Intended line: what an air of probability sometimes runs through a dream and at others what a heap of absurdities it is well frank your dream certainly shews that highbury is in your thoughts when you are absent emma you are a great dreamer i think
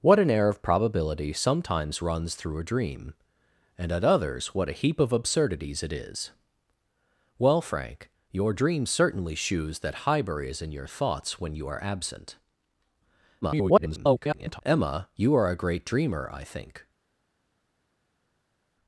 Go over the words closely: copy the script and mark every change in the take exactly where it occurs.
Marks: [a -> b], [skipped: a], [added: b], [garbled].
what an air of probability sometimes runs through a dream and at others what a heap of absurdities it is well frank your dream certainly shews that highbury is in your thoughts when you are absent [garbled] emma you are a great dreamer i think